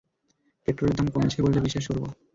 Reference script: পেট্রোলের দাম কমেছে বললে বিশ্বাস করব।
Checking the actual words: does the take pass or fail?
pass